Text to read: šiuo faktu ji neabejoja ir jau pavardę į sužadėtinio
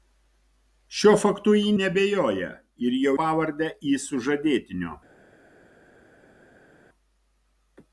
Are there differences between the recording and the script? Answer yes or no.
no